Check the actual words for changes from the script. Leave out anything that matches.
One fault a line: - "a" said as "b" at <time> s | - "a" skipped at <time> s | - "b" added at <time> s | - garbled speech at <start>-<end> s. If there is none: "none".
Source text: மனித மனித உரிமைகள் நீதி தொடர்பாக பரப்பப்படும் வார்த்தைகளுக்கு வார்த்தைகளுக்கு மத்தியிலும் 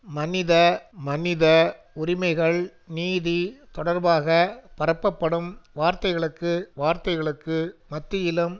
none